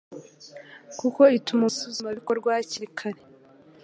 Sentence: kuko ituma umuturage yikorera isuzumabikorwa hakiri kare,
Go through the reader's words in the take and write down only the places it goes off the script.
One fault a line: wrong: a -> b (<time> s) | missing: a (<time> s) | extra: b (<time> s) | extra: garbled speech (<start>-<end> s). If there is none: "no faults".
missing: umuturage yikorera (1.6 s)